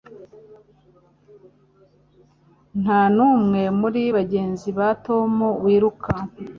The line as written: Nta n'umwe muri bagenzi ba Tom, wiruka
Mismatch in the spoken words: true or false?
false